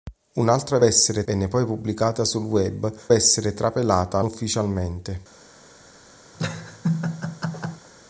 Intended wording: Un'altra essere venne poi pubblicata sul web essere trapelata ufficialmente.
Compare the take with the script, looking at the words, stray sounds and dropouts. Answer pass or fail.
fail